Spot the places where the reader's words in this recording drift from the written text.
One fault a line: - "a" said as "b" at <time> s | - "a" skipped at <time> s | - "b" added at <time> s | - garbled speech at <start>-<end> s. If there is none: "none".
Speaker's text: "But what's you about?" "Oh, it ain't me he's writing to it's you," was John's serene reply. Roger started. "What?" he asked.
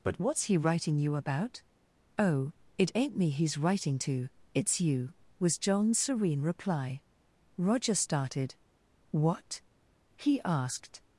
- "he writing" added at 0.5 s